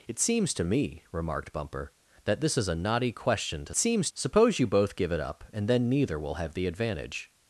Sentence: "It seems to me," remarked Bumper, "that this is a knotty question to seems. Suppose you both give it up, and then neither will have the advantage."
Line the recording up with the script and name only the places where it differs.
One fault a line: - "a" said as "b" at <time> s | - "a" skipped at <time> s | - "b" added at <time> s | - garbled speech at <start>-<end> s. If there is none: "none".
none